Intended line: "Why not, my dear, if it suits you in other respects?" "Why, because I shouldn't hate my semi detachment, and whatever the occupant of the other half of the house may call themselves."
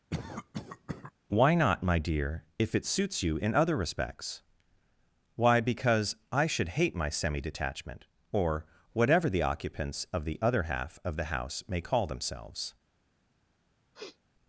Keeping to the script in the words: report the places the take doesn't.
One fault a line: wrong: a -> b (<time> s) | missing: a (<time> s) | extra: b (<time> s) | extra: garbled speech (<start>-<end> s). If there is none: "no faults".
wrong: shouldn't -> should (6.4 s)
wrong: and -> or (8.3 s)
wrong: occupant -> occupants (9.4 s)